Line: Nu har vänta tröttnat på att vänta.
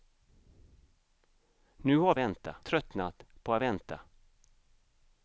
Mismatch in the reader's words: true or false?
false